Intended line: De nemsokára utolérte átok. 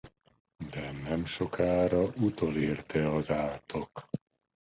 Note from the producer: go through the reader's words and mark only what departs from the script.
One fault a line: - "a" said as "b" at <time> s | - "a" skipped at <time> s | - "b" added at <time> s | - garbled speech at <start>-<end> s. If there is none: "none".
- "az" added at 3.1 s